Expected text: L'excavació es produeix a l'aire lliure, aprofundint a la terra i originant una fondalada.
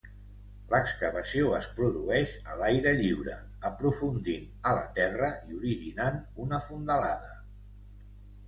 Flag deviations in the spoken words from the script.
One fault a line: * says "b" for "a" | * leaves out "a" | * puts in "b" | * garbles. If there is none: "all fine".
all fine